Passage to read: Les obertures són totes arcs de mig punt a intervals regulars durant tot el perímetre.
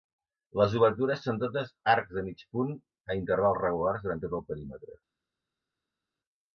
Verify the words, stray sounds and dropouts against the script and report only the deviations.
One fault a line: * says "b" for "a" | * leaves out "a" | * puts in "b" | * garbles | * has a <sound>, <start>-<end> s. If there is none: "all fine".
all fine